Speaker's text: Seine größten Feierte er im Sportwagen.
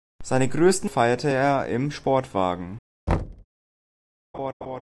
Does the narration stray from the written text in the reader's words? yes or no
no